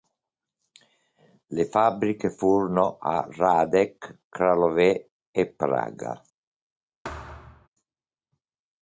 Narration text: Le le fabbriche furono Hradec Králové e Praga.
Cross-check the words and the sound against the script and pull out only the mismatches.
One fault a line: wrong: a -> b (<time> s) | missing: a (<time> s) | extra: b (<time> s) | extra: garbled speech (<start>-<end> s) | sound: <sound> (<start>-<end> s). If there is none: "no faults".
missing: le (1.6 s)
extra: a (3.0 s)
sound: thud (7.0-7.7 s)